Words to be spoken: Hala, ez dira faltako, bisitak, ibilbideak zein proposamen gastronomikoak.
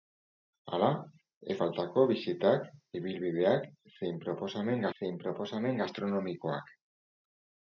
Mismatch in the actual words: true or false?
true